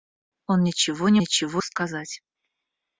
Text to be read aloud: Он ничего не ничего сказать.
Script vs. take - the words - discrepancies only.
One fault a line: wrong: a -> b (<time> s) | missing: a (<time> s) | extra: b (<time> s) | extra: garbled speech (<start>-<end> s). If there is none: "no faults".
no faults